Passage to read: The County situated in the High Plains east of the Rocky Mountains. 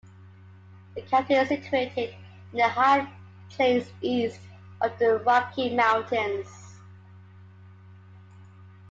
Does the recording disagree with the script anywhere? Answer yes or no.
yes